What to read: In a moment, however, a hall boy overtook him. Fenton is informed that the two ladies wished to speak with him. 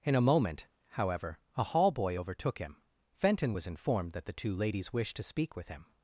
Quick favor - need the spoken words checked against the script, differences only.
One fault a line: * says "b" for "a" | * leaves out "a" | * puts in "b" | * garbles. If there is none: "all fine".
* says "was" for "is"